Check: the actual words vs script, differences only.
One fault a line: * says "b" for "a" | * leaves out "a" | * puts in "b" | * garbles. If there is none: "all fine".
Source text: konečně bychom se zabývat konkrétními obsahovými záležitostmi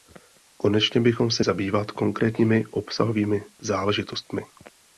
all fine